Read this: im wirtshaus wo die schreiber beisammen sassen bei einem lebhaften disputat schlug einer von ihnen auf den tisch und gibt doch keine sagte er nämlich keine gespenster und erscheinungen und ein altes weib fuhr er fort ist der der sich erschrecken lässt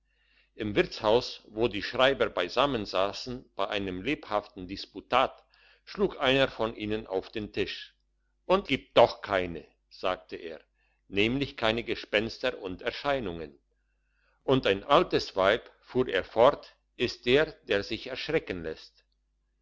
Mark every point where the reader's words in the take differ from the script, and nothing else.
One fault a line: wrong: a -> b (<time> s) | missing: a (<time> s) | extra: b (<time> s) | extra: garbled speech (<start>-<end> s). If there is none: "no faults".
no faults